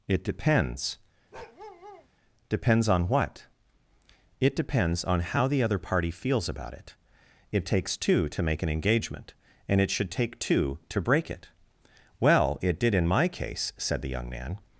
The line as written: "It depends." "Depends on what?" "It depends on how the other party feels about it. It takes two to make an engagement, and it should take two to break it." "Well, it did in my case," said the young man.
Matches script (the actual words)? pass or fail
pass